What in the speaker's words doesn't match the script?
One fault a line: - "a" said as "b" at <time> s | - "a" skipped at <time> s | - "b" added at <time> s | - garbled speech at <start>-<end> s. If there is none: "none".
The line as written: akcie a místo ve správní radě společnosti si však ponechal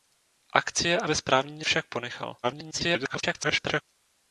- "místo" skipped at 1.1 s
- "radě společnosti si" skipped at 1.7 s
- garbled speech at 2.4-3.8 s